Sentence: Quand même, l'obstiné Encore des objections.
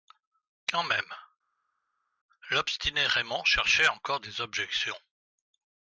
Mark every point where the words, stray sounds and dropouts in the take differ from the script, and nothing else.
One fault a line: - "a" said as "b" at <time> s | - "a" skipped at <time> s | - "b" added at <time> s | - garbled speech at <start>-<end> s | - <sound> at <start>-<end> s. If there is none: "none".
- "Raymond cherchait" added at 3.1 s